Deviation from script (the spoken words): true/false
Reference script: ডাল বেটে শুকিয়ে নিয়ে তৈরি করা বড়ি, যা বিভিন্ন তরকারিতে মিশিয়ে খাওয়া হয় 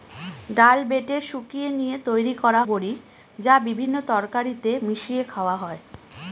false